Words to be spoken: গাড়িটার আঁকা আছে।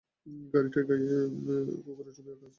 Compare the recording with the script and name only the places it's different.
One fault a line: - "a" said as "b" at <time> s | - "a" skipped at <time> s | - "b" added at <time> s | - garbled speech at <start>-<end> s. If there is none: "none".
- "গায়ে কুকুরের ছবি" added at 0.9 s